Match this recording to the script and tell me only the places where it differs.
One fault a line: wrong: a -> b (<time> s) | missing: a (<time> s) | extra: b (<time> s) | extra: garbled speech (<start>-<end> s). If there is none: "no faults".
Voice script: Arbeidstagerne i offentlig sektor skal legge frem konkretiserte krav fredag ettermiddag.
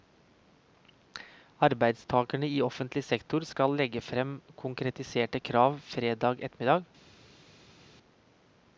no faults